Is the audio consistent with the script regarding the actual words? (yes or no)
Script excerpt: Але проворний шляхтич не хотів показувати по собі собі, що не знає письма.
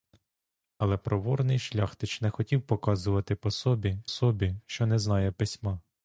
yes